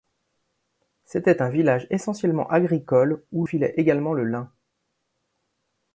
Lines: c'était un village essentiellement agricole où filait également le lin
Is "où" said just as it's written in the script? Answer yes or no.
yes